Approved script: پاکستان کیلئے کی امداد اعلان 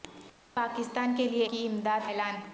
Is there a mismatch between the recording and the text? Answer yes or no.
no